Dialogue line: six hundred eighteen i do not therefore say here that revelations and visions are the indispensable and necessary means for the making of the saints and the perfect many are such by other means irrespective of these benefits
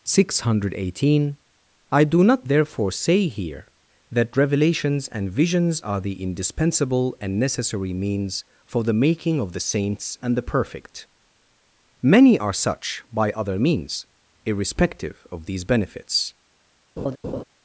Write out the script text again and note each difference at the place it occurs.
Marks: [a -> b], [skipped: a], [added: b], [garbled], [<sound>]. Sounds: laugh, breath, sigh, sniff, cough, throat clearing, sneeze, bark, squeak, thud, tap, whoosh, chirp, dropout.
six hundred eighteen i do not therefore say here that revelations and visions are the indispensable and necessary means for the making of the saints and the perfect many are such by other means irrespective of these benefits [laugh]